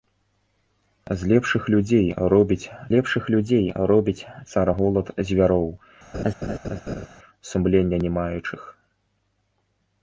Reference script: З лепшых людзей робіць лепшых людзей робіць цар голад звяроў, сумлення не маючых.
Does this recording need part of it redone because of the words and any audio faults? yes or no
yes